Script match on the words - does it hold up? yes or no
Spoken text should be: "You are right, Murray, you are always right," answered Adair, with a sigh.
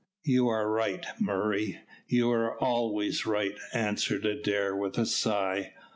yes